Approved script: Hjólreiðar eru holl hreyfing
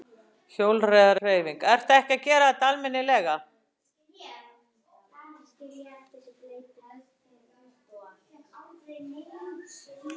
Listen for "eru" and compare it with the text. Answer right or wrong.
wrong